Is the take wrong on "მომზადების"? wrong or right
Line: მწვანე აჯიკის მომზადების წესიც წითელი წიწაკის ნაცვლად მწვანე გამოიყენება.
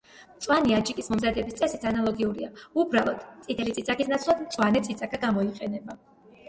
right